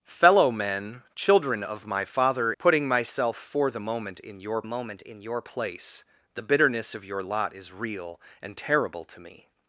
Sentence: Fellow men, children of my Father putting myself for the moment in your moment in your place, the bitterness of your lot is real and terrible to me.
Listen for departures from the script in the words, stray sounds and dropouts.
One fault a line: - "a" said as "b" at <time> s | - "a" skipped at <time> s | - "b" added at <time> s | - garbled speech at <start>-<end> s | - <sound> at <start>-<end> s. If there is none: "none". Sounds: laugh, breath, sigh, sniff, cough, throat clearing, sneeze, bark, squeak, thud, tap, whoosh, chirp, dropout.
none